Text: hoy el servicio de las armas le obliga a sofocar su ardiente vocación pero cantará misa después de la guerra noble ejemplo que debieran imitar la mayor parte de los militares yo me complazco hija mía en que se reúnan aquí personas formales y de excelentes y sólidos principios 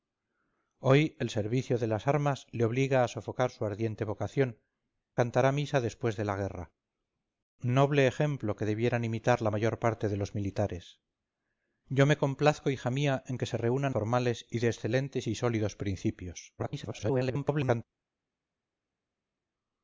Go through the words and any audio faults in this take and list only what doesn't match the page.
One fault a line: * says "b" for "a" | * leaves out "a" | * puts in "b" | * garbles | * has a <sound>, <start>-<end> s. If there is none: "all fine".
* leaves out "pero"
* leaves out "aquí personas"
* garbles